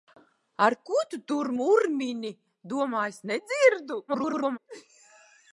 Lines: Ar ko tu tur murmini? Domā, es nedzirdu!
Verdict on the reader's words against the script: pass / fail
fail